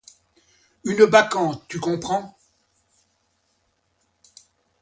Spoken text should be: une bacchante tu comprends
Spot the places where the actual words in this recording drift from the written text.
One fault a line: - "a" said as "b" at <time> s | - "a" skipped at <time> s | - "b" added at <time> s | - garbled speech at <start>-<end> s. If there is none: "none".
none